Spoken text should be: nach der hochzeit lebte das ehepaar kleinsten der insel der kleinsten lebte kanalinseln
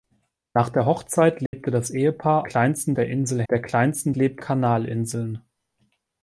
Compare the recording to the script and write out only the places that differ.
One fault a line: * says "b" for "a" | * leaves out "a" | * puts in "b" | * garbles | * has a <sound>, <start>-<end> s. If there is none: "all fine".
* has a dropout, 1.5-1.5 s